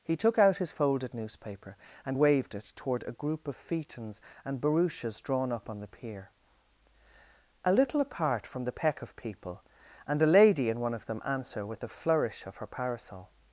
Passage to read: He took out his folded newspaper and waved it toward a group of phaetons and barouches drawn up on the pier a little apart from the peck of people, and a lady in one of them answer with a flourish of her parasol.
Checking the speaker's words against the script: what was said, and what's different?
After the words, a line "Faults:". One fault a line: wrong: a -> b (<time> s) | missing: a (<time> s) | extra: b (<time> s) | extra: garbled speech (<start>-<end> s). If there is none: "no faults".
He took out his folded newspaper and waved it toward a group of phaetons and barouches drawn up on the pier a little apart from the peck of people, and a lady in one of them answer with a flourish of her parasol.
Faults:
no faults